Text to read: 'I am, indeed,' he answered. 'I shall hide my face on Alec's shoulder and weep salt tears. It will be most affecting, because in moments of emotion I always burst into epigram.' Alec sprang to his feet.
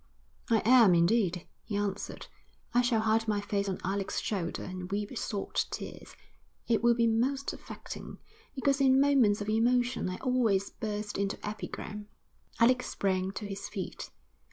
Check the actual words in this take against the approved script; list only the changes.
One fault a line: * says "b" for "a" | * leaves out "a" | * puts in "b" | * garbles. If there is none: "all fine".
all fine